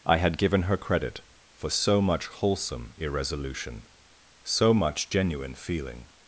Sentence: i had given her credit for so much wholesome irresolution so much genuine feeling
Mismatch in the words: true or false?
false